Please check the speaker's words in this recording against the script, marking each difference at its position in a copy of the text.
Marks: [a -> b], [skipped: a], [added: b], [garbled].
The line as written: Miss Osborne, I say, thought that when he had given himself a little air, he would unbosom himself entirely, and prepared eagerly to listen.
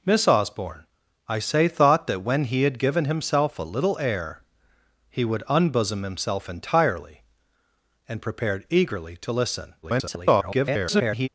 Miss Osborne, I say, thought that when he had given himself a little air, he would unbosom himself entirely, and prepared eagerly to listen. [garbled]